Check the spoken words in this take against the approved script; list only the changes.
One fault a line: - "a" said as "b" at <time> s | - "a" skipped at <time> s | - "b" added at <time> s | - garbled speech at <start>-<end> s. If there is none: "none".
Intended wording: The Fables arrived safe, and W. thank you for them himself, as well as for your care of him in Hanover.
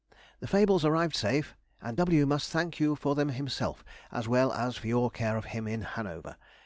- "must" added at 2.2 s